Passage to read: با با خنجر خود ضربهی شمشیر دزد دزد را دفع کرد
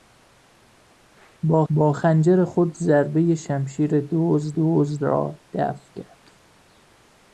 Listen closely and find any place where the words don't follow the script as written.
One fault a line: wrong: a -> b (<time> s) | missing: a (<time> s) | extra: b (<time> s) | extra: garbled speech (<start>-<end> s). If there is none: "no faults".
no faults